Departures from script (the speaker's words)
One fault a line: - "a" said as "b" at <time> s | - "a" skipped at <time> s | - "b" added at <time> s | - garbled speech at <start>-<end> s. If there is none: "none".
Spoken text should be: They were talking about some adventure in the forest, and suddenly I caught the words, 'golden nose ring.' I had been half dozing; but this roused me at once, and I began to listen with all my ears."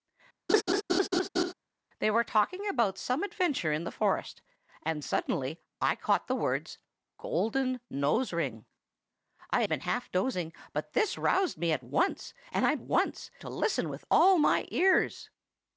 - "had" skipped at 9.6 s
- "began" said as "once" at 12.8 s